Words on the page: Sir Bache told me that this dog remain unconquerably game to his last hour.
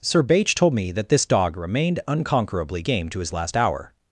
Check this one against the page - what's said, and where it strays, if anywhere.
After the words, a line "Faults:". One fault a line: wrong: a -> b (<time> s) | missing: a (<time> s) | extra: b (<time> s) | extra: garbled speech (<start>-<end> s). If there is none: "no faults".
Sir Bache told me that this dog remained unconquerably game to his last hour.
Faults:
wrong: remain -> remained (1.6 s)